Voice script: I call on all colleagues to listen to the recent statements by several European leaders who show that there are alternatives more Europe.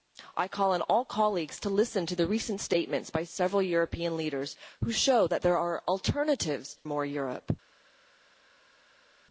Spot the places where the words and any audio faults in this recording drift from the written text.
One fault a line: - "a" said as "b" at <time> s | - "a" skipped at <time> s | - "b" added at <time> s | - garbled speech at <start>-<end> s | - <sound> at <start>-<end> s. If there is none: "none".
none